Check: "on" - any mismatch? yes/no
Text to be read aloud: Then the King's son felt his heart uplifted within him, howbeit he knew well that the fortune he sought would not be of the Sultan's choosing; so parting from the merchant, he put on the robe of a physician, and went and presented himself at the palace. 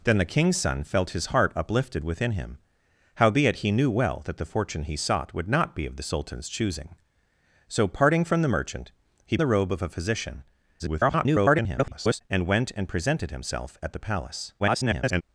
yes